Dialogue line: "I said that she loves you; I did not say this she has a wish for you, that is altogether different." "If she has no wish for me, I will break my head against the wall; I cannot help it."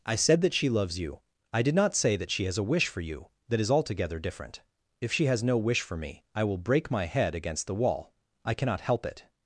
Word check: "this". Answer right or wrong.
wrong